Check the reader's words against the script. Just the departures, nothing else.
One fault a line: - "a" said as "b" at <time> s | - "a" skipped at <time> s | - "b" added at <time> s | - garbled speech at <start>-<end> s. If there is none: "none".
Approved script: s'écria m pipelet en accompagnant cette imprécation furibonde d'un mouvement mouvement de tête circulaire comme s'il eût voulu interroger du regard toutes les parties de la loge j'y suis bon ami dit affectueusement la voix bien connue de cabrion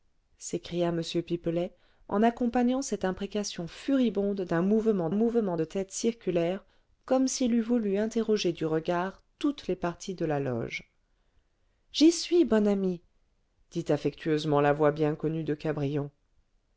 none